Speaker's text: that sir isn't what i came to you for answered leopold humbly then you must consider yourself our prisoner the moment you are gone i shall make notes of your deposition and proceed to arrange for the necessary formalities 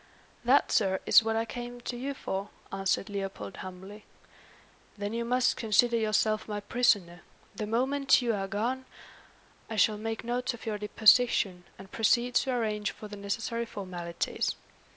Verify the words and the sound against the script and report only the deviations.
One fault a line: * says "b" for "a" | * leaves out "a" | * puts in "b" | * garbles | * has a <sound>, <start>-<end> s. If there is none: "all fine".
* says "is" for "isn't"
* says "my" for "our"